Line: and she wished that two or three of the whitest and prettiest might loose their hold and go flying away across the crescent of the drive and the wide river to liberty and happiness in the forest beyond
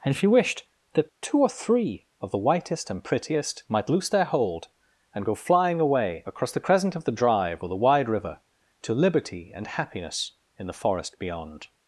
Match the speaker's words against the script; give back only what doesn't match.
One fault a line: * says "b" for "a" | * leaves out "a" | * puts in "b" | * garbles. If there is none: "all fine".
* says "or" for "and"